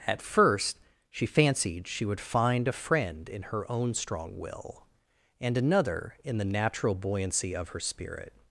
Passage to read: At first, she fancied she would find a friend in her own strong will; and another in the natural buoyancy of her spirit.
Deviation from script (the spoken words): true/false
false